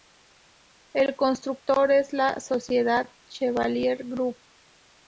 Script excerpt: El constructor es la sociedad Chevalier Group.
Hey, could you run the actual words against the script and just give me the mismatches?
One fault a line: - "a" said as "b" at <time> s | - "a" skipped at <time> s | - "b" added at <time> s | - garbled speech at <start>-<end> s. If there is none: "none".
none